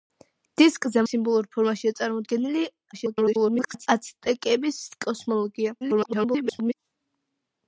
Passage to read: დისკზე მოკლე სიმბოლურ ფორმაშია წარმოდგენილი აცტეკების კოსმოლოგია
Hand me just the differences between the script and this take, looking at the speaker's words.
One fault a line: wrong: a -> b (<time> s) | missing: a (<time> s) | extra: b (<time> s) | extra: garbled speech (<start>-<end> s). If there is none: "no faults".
missing: მოკლე (1.0 s)
extra: garbled speech (2.9-3.9 s)
extra: garbled speech (5.8-6.7 s)